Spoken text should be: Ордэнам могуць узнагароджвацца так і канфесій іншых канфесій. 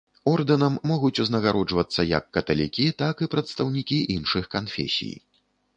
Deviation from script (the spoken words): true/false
true